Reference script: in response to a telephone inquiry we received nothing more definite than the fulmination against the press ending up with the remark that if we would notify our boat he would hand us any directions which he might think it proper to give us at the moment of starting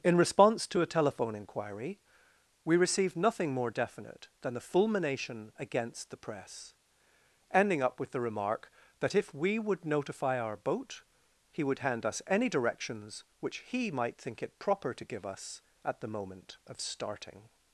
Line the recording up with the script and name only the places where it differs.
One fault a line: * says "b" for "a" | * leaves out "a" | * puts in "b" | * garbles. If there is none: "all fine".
all fine